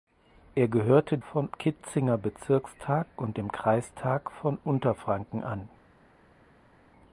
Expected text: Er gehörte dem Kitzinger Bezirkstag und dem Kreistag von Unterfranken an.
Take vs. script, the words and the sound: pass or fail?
fail